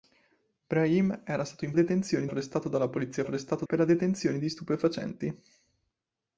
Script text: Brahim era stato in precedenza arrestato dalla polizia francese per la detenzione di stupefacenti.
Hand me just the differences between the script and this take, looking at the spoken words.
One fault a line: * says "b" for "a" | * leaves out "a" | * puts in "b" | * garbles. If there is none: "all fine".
* says "detenzione" for "precedenza"
* says "arrestato" for "francese"